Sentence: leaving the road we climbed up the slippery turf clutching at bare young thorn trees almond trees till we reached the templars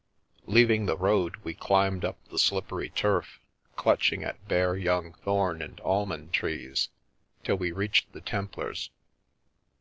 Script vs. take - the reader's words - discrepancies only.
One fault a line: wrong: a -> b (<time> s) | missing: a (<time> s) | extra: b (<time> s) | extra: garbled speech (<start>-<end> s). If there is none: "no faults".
wrong: trees -> and (5.6 s)